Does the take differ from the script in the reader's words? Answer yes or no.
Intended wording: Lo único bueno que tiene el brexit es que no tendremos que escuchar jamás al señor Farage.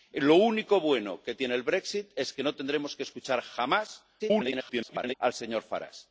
yes